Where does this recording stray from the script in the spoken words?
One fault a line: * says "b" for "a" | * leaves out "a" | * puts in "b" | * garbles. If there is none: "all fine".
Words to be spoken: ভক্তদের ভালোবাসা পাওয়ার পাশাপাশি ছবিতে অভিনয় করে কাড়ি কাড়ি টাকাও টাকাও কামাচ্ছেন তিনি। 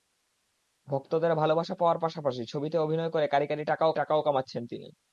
all fine